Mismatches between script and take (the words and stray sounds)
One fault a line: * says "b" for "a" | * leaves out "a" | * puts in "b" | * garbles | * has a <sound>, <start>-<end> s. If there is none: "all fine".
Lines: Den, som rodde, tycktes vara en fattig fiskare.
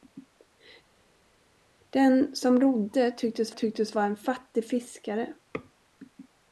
* puts in "tycktes"